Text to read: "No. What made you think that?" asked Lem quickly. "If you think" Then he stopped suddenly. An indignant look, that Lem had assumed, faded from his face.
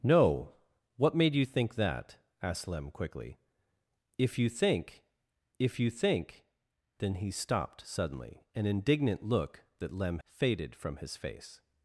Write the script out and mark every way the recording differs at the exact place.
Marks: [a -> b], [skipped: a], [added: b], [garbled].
"No. What made you think that?" asked Lem quickly. "If you think" [added: if you think] Then he stopped suddenly. An indignant look, that Lem [skipped: had assumed,] faded from his face.